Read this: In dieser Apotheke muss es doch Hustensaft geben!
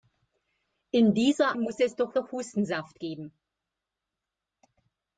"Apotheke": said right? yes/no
no